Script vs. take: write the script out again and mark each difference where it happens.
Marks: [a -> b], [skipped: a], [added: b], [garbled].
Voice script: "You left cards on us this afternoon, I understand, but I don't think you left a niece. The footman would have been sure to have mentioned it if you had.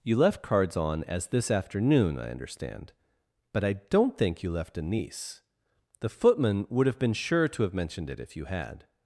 "You left cards on [us -> as] this afternoon, I understand, but I don't think you left a niece. The footman would have been sure to have mentioned it if you had.